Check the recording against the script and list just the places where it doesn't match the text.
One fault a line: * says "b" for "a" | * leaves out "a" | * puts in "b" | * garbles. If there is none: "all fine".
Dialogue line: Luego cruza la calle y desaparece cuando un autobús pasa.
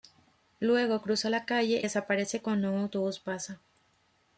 * leaves out "y"